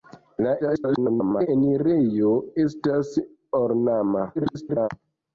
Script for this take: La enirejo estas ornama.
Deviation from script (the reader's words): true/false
true